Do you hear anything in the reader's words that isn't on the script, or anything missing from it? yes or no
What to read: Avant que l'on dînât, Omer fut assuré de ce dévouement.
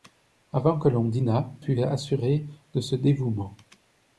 yes